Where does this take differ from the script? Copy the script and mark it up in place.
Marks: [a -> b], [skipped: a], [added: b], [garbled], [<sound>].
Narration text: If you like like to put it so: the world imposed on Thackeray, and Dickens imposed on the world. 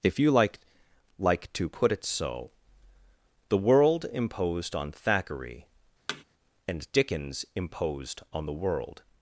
If you like like to put it so: the world imposed on Thackeray, [thud] and Dickens imposed on the world.